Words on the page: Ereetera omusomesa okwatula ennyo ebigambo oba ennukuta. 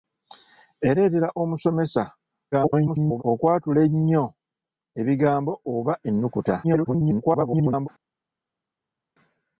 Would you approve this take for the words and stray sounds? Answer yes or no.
no